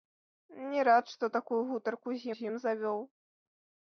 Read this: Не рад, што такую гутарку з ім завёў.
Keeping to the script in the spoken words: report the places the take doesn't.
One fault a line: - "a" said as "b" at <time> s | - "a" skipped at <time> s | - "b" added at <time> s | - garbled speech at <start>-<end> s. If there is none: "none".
- "з" added at 2.3 s